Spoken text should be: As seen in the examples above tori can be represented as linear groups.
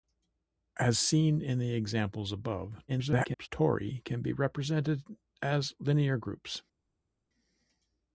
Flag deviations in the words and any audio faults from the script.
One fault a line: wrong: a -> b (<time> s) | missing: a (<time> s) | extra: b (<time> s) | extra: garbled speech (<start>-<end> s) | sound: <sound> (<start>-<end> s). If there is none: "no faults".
extra: garbled speech (2.9-3.5 s)